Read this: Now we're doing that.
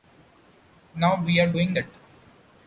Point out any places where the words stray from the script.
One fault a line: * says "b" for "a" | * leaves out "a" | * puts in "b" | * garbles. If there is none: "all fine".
all fine